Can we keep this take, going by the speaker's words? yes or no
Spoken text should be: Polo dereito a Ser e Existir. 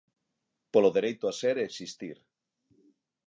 yes